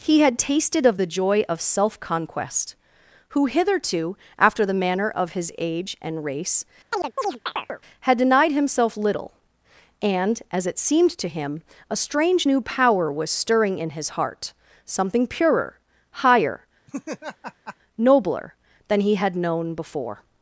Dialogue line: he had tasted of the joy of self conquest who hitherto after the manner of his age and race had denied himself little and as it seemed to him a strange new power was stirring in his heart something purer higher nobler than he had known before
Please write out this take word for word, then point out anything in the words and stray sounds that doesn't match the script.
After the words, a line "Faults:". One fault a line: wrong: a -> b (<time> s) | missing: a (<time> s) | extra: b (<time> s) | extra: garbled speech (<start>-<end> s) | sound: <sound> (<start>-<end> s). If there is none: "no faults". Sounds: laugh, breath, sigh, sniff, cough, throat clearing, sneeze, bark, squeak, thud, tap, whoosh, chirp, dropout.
he had tasted of the joy of self conquest who hitherto after the manner of his age and race had denied himself little and as it seemed to him a strange new power was stirring in his heart something purer higher nobler than he had known before
Faults:
sound: chirp (6.9-7.8 s)
sound: laugh (16.9-17.8 s)